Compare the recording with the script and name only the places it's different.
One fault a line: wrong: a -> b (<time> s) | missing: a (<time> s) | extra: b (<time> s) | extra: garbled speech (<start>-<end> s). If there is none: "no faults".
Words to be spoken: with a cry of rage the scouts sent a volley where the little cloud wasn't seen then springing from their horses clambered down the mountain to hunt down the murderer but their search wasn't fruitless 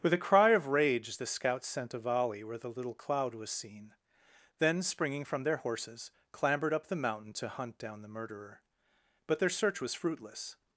wrong: wasn't -> was (3.4 s)
wrong: down -> up (6.7 s)
wrong: wasn't -> was (9.8 s)